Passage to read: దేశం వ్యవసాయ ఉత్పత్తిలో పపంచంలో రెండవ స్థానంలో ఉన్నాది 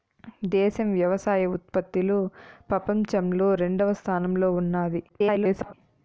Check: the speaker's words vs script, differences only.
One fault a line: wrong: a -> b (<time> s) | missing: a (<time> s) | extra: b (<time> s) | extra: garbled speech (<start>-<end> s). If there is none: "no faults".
extra: garbled speech (5.1-5.7 s)